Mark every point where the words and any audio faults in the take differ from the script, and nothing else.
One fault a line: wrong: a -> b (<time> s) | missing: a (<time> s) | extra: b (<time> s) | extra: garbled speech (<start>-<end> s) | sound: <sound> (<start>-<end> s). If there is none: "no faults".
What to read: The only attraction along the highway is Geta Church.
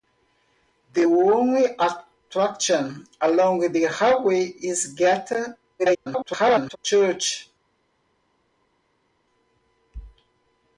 extra: garbled speech (5.8-6.8 s)